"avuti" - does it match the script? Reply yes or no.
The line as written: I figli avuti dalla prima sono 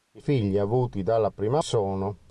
yes